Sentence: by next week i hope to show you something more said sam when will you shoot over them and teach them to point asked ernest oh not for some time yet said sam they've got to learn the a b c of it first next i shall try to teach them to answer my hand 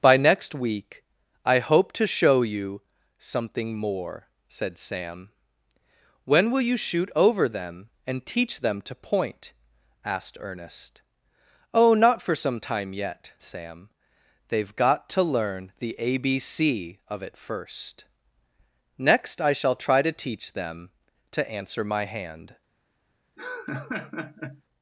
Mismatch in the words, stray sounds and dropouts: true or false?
true